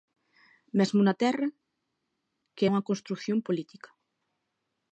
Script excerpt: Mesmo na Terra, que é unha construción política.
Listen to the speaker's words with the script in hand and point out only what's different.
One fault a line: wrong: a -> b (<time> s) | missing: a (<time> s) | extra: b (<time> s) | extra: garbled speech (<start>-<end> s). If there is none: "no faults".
no faults